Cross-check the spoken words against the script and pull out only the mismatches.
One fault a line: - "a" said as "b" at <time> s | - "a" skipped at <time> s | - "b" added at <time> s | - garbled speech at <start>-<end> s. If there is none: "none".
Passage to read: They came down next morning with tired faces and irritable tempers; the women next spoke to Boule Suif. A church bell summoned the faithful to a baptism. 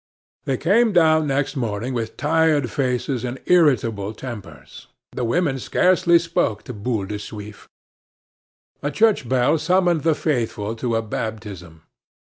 - "next" said as "scarcely" at 5.6 s
- "de" added at 7.0 s